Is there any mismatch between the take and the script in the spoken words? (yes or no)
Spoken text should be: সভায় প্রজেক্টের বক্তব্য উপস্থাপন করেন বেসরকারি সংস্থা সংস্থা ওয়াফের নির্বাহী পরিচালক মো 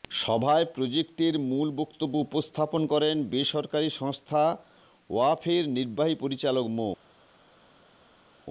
yes